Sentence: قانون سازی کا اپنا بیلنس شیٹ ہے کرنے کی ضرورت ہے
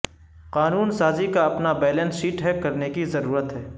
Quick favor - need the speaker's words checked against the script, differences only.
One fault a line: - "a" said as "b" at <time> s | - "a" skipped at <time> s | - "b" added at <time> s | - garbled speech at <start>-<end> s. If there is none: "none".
none